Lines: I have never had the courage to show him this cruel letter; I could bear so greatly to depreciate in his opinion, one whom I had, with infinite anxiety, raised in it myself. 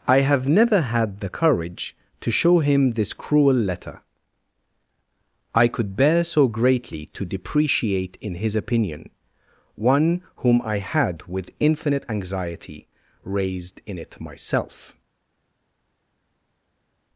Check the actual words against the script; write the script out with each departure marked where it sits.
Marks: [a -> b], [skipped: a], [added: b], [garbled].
I have never had the courage to show him this cruel letter; I could bear so greatly to depreciate in his opinion, one whom I had, with infinite anxiety, raised in it myself.